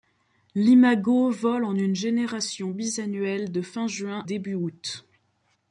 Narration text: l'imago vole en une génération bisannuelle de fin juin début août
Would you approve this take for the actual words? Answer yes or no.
yes